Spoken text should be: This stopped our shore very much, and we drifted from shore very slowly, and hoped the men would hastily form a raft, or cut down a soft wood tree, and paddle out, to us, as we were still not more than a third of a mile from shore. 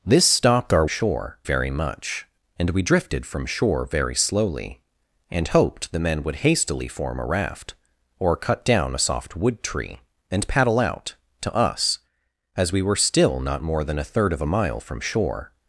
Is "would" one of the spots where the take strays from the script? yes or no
no